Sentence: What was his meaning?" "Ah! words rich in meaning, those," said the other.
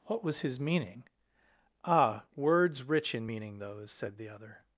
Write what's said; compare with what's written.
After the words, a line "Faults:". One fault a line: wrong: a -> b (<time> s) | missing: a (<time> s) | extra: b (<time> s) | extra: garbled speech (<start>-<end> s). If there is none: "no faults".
What was his meaning?" "Ah! words rich in meaning, those," said the other.
Faults:
no faults